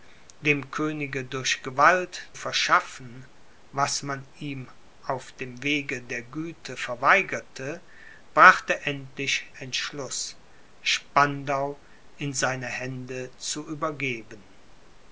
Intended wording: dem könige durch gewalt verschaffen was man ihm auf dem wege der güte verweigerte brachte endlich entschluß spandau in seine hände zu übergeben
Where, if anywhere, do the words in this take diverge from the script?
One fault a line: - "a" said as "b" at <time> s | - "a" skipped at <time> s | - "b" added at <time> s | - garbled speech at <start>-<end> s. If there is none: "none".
none